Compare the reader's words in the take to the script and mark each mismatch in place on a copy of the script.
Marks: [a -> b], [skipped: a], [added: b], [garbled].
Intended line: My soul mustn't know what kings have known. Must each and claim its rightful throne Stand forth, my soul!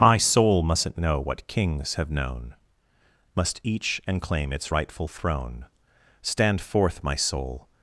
My soul mustn't know what kings have known. Must each and claim its rightful throne Stand forth, my soul!